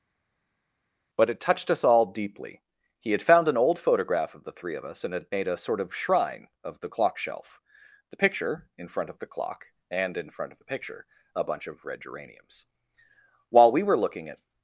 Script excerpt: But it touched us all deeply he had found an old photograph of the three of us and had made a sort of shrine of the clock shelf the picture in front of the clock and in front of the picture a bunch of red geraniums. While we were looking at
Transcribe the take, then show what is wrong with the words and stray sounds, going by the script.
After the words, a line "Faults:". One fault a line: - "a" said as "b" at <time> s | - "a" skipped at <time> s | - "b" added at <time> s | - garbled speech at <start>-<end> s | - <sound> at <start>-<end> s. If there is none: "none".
But it touched us all deeply he had found an old photograph of the three of us and had made a sort of shrine of the clock shelf the picture in front of the clock and in front of the picture a bunch of red geraniums. While we were looking at
Faults:
none